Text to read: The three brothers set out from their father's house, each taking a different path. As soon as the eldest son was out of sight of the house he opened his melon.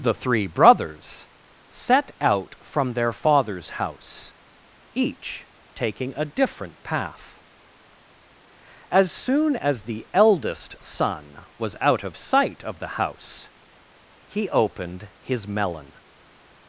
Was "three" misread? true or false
false